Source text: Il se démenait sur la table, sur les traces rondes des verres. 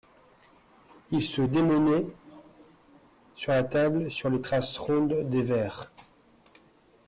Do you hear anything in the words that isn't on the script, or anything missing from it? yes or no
no